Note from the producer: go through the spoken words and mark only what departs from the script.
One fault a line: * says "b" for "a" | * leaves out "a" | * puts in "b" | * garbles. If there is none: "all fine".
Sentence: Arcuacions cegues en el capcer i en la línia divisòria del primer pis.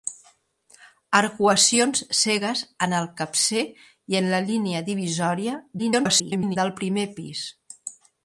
* garbles